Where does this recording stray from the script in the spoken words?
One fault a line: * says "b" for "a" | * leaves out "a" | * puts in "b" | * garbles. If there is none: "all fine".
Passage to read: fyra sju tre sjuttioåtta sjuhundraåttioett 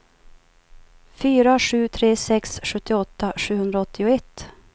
* puts in "sex"